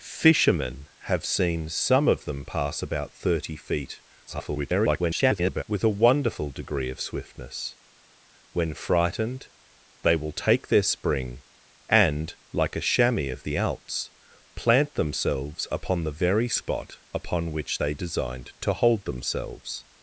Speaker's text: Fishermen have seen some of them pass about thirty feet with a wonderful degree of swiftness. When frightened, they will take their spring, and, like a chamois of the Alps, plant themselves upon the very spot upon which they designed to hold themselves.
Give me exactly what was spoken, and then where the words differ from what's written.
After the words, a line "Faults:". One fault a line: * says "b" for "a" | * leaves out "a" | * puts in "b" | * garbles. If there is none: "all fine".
Fishermen have seen some of them pass about thirty feet [garbled] with a wonderful degree of swiftness. When frightened, they will take their spring, and, like a chamois of the Alps, plant themselves upon the very spot upon which they designed to hold themselves.
Faults:
* garbles